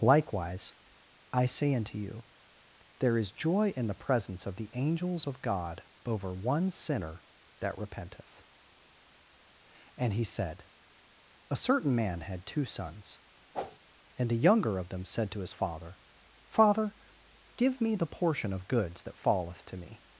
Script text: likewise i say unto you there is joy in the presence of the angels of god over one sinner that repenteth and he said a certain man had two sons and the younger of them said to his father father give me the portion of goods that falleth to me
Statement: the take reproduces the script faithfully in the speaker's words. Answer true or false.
true